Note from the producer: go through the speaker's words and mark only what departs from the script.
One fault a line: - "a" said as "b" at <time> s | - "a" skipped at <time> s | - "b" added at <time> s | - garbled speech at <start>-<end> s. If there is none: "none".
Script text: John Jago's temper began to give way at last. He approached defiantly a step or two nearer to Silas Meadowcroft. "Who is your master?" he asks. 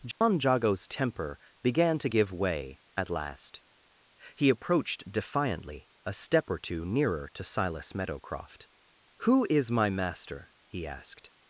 - "your" said as "my" at 9.7 s
- "asks" said as "asked" at 10.9 s